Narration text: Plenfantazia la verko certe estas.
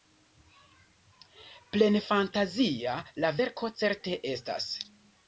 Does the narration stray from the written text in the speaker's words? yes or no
no